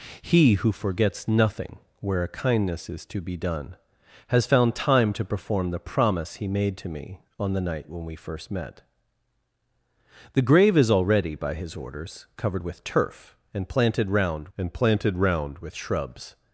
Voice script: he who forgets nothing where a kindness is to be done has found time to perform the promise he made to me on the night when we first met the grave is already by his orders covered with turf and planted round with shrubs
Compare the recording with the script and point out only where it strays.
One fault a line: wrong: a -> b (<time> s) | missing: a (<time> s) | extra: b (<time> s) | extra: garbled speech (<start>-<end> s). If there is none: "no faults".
extra: and planted round (14.6 s)